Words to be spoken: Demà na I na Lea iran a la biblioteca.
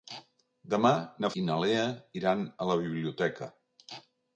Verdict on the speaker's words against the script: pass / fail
pass